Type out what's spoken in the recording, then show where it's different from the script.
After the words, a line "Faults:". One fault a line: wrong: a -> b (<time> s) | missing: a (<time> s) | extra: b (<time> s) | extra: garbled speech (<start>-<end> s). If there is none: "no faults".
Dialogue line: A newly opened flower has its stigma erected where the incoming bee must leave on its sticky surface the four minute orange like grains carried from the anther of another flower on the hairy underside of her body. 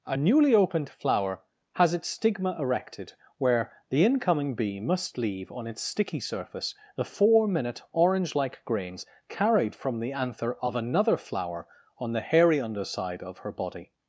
A newly opened flower has its stigma erected where the incoming bee must leave on its sticky surface the four minute orange like grains carried from the anther of another flower on the hairy underside of her body.
Faults:
no faults